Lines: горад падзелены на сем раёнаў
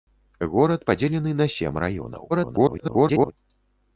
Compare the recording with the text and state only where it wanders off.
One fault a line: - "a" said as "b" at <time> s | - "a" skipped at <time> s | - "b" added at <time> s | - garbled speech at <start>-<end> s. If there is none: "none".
- garbled speech at 2.3-3.3 s